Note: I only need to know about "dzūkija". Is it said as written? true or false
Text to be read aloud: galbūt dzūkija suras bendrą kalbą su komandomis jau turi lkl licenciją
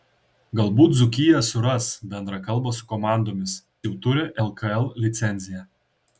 true